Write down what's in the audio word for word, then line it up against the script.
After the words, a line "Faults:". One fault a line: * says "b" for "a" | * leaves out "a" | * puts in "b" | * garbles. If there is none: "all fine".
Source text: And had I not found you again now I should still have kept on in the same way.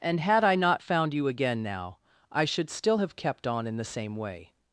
And had I not found you again now I should still have kept on in the same way.
Faults:
all fine